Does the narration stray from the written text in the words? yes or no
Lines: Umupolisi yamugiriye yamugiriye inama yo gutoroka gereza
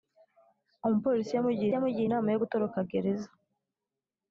no